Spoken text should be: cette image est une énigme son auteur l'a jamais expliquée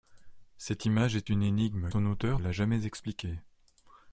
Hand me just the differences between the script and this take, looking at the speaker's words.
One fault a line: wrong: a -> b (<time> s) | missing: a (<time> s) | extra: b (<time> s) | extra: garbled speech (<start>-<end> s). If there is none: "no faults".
no faults